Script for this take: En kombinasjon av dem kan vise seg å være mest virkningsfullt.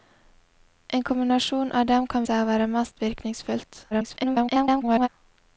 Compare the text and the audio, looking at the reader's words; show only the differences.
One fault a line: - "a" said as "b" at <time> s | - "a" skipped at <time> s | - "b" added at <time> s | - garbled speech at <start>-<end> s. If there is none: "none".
- "vise" skipped at 2.2 s
- garbled speech at 3.9-5.1 s